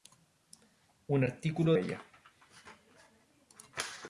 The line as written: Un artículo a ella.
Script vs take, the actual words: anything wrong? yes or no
no